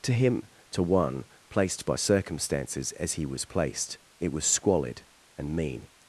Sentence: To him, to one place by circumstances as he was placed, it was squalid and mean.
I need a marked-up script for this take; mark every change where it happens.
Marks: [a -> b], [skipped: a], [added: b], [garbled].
To him, to one [place -> placed] by circumstances as he was placed, it was squalid and mean.